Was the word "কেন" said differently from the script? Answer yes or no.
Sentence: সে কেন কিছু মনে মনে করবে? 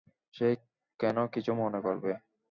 no